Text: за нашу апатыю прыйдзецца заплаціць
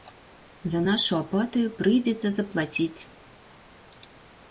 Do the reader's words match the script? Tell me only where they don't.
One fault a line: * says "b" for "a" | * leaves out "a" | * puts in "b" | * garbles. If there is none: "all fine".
all fine